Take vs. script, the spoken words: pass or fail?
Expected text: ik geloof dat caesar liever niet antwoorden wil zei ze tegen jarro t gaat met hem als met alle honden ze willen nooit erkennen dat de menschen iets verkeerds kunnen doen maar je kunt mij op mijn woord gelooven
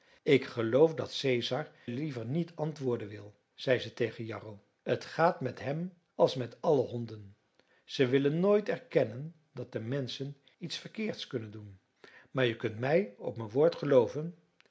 pass